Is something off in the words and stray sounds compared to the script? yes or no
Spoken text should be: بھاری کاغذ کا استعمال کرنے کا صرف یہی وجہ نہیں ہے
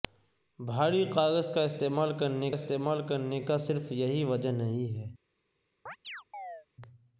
yes